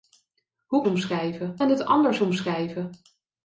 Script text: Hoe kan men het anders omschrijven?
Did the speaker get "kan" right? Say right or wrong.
wrong